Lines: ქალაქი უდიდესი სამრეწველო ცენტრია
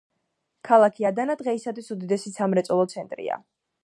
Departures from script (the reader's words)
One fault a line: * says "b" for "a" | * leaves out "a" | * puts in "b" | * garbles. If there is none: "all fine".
* puts in "ადანა დღეისათვის"